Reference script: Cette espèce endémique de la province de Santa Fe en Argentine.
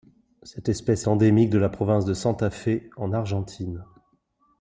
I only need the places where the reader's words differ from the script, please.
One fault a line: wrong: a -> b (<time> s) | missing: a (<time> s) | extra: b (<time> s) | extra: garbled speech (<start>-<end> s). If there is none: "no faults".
no faults